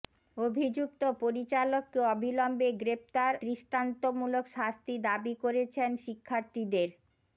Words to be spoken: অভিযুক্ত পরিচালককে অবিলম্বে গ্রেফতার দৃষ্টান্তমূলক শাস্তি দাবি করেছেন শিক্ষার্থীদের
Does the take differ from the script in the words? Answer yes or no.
no